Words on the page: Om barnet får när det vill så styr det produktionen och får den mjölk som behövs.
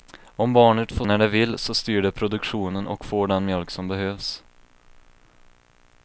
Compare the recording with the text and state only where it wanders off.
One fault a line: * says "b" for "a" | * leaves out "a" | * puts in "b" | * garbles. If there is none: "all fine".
all fine